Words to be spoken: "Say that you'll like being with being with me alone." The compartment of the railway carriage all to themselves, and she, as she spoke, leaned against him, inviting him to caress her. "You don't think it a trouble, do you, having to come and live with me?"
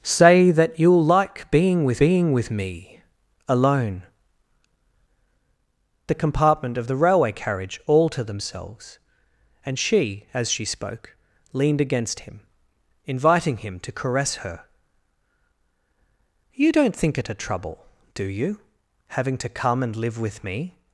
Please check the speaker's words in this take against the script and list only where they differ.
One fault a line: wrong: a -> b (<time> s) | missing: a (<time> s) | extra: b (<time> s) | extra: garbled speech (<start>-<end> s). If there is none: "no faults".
no faults